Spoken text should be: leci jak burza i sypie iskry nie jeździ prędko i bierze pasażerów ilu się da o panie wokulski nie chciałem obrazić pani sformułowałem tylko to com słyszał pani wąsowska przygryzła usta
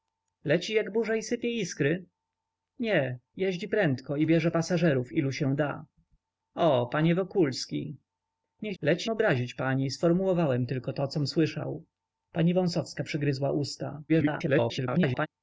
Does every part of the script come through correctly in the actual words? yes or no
no